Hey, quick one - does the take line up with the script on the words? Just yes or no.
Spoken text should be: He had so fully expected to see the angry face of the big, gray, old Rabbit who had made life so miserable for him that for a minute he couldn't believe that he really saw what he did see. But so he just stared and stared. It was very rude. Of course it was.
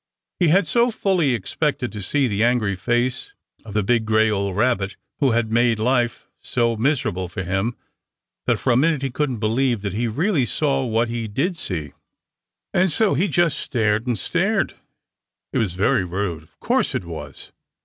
no